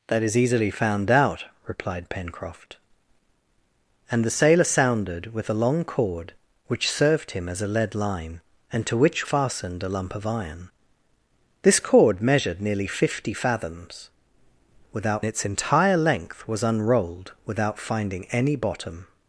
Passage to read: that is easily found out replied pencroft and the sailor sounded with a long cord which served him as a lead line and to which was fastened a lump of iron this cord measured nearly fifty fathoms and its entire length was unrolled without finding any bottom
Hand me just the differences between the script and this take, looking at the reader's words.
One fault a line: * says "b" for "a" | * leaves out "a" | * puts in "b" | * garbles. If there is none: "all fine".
* leaves out "was"
* says "without" for "and"